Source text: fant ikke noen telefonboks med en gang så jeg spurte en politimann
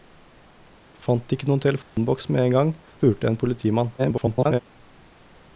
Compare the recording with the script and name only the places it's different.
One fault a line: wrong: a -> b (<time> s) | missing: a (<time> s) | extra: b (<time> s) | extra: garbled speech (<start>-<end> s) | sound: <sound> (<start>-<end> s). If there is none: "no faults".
sound: dropout (1.8-2.0 s)
missing: så jeg (2.7 s)
extra: garbled speech (4.0-4.6 s)